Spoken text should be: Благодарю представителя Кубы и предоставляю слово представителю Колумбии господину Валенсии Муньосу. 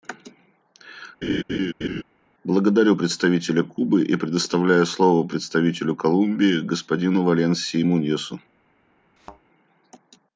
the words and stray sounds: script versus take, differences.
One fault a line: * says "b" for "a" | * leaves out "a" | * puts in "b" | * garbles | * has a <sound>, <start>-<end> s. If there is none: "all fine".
* has a laugh, 1.2-2.0 s
* has a thud, 9.2-9.4 s